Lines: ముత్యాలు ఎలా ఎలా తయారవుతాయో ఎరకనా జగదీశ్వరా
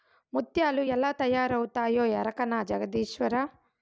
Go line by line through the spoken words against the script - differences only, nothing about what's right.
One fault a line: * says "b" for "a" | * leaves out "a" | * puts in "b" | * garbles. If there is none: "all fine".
* leaves out "ఎలా"